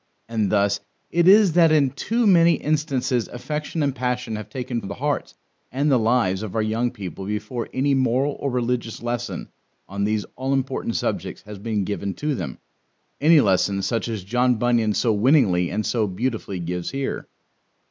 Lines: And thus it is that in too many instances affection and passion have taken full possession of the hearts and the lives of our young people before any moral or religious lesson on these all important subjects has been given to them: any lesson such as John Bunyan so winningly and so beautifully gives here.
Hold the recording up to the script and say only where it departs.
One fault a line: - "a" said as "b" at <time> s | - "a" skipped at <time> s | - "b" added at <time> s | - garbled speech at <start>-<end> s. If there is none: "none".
- "full possession" skipped at 4.8 s